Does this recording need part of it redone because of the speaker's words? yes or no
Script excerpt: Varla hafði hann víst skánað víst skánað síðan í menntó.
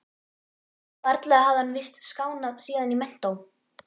yes